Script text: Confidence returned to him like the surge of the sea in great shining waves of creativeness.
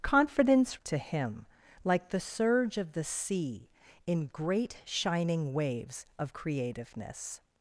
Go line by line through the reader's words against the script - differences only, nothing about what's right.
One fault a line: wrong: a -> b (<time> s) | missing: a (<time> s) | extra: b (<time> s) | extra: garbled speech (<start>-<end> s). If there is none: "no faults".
missing: returned (0.8 s)